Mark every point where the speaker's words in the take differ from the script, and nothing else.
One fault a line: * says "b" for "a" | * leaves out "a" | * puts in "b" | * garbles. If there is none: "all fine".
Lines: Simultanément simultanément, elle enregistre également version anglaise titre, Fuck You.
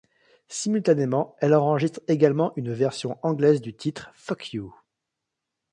* leaves out "simultanément"
* puts in "une"
* puts in "du"